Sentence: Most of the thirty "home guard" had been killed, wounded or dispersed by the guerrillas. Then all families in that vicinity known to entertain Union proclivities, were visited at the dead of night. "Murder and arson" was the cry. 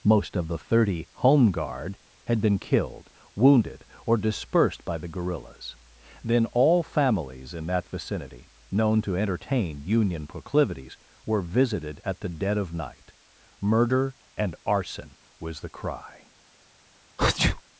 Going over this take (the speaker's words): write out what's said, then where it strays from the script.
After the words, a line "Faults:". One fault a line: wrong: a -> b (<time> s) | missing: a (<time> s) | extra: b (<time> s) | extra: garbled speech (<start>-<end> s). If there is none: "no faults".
Most of the thirty "home guard" had been killed, wounded or dispersed by the guerrillas. Then all families in that vicinity known to entertain Union proclivities, were visited at the dead of night. "Murder and arson" was the cry.
Faults:
no faults